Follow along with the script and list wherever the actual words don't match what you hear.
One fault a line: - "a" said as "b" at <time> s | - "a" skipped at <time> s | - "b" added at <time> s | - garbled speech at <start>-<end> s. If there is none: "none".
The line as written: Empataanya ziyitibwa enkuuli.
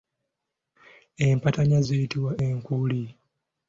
none